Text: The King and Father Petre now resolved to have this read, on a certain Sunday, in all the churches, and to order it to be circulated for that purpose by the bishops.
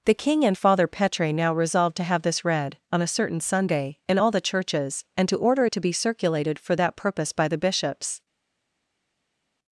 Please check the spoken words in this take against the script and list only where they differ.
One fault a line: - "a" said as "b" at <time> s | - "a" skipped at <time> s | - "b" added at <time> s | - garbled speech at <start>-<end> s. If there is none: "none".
none